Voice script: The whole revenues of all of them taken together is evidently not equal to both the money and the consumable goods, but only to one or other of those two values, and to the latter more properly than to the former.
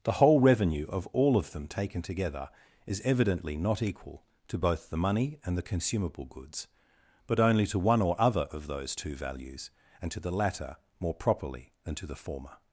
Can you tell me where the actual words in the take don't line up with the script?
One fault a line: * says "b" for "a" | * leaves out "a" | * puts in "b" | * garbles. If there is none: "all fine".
* says "revenue" for "revenues"